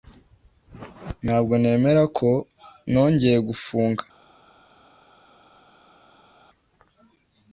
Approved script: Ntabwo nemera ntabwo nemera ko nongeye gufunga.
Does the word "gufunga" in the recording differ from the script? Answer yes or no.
no